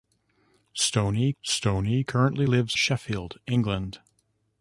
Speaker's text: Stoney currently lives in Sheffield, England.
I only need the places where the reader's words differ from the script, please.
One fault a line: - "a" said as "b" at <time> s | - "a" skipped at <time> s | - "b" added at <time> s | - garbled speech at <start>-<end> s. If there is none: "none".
- "stoney" added at 1.4 s
- "in" skipped at 2.8 s